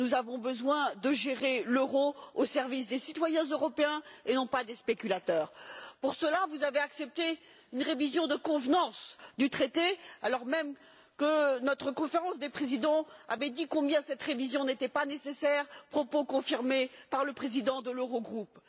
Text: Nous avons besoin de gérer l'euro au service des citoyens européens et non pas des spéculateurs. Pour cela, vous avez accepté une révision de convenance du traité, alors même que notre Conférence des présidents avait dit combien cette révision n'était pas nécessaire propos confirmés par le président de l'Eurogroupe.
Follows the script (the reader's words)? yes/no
yes